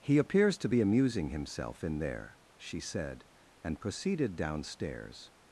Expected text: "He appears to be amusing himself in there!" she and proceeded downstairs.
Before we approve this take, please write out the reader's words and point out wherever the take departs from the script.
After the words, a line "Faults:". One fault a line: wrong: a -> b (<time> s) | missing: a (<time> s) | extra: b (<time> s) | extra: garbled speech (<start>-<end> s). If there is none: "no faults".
"He appears to be amusing himself in there!" she said, and proceeded downstairs.
Faults:
extra: said (2.8 s)